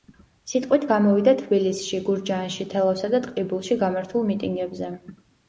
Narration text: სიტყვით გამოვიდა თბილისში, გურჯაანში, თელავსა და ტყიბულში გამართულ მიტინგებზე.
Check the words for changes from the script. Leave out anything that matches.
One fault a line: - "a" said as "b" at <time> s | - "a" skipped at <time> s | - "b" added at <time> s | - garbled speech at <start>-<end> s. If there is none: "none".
none